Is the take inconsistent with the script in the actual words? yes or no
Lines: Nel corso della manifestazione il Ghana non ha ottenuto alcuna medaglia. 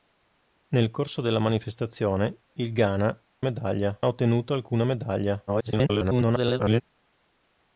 yes